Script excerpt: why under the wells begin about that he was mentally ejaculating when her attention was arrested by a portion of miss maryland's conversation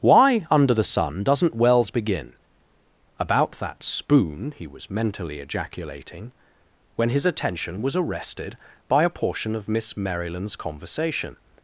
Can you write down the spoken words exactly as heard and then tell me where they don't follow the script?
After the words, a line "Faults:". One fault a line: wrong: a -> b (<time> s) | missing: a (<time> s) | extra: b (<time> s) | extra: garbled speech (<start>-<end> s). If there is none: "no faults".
why under the sun doesn't wells begin about that spoon he was mentally ejaculating when his attention was arrested by a portion of miss maryland's conversation
Faults:
extra: sun doesn't (0.8 s)
extra: spoon (3.8 s)
wrong: her -> his (7.1 s)